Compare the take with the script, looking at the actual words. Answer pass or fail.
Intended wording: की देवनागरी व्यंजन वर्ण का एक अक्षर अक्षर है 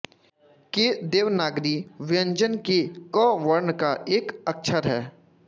fail